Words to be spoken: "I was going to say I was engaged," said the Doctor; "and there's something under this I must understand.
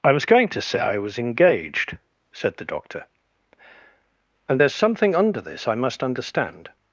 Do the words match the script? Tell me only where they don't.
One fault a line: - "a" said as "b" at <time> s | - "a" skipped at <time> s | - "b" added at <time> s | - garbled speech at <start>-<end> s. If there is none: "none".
none